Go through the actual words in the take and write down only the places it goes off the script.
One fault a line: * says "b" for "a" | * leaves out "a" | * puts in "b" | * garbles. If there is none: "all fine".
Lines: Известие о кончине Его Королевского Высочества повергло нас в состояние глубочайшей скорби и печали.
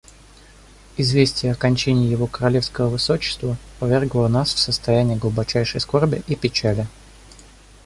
all fine